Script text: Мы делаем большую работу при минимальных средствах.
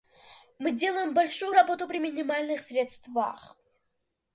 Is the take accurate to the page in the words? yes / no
yes